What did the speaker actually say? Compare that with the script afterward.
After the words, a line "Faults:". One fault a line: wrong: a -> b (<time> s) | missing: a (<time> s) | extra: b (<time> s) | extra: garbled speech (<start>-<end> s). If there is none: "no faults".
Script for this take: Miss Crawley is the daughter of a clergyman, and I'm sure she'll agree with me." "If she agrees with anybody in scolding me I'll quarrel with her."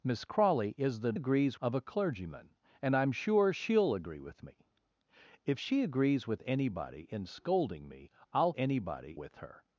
Miss Crawley is the agrees of a clergyman, and I'm sure she'll agree with me." "If she agrees with anybody in scolding me I'll anybody with her."
Faults:
wrong: daughter -> agrees (1.1 s)
wrong: quarrel -> anybody (8.5 s)